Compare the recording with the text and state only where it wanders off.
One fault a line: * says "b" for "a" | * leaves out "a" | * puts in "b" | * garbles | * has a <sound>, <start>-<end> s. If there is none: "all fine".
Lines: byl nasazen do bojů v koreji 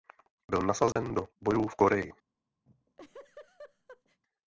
* has a dropout, 0.9-1.0 s
* has a laugh, 2.7-4.2 s